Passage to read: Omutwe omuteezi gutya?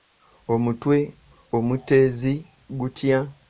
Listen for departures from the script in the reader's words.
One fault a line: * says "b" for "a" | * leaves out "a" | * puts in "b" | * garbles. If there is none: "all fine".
all fine